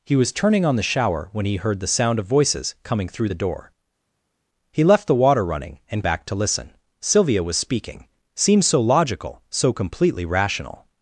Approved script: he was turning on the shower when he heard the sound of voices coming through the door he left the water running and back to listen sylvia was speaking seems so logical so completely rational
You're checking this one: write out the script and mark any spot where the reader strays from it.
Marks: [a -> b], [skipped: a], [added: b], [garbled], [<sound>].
he was turning on the shower when he heard the sound of voices coming through the door he left the water running and back to listen sylvia was speaking seems so logical so completely rational